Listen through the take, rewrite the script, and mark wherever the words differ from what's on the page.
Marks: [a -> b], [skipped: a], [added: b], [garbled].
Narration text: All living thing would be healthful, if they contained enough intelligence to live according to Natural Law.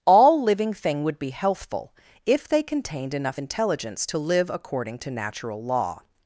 All living thing would be healthful, if they contained enough intelligence to live according to Natural Law.